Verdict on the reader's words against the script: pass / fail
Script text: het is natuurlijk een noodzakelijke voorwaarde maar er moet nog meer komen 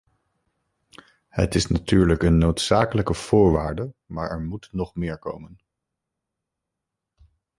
pass